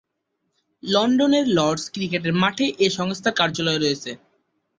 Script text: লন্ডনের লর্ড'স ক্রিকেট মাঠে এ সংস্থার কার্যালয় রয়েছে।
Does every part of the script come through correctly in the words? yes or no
yes